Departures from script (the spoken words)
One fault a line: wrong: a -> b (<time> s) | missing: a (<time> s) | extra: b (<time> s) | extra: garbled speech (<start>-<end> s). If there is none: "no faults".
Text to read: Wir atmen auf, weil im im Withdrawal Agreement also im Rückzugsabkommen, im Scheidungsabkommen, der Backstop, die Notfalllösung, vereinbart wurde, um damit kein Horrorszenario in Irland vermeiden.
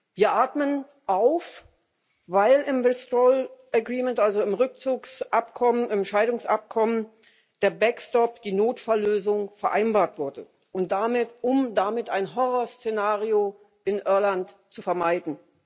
missing: im (2.8 s)
wrong: kein -> ein (12.1 s)
extra: zu (14.7 s)